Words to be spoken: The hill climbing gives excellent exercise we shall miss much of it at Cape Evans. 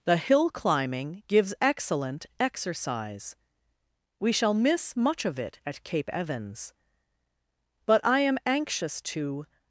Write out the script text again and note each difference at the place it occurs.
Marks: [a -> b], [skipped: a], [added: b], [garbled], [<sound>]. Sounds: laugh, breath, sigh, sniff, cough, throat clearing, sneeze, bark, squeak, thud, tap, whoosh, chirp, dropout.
The hill climbing gives excellent exercise we shall miss much of it at Cape Evans. [added: But I am anxious to]